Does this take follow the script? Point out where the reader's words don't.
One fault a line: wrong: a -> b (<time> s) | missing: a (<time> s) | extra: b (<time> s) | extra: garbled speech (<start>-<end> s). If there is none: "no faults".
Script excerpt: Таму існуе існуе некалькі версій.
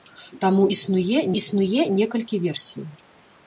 no faults